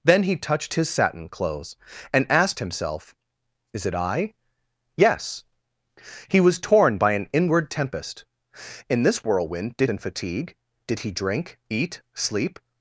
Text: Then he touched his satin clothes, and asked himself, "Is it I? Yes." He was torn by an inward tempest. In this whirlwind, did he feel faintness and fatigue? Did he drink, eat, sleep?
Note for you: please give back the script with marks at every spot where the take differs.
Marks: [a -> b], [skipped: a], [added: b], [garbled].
Then he touched his satin clothes, and asked himself, "Is it I? Yes." He was torn by an inward tempest. In this whirlwind, did [skipped: he feel faintness] and fatigue? Did he drink, eat, sleep?